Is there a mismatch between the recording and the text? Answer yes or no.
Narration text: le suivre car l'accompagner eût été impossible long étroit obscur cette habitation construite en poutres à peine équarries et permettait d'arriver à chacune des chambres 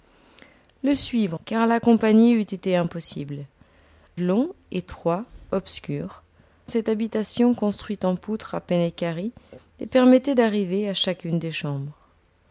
no